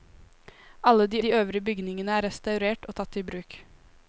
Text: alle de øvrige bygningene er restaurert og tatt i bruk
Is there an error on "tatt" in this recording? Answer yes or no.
no